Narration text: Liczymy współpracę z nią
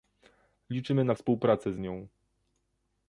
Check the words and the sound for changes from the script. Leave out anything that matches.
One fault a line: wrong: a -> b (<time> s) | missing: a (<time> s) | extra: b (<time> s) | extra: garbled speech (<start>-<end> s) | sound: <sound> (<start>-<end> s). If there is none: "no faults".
extra: na (1.0 s)